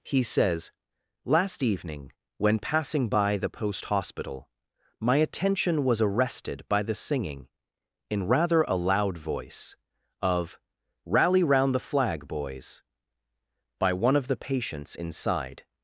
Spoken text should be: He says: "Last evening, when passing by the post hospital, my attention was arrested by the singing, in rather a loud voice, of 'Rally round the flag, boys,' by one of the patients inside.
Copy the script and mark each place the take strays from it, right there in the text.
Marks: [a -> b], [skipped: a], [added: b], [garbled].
He says: "Last evening, when passing by the post hospital, my attention was arrested by the singing, in rather a loud voice, of 'Rally round the flag, boys,' by one of the patients inside.